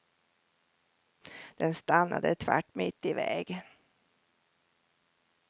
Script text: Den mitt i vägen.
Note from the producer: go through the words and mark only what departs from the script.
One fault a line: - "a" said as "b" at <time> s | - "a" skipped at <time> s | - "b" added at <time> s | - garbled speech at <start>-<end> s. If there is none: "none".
- "stannade tvärt" added at 1.7 s